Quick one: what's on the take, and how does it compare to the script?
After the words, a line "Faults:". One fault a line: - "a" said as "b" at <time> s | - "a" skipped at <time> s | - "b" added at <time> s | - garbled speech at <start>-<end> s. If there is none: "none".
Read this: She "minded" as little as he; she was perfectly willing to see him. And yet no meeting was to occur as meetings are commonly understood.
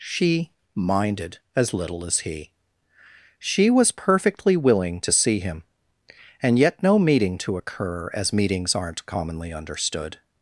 She "minded" as little as he; she was perfectly willing to see him. And yet no meeting to occur as meetings aren't commonly understood.
Faults:
- "was" skipped at 7.4 s
- "are" said as "aren't" at 8.8 s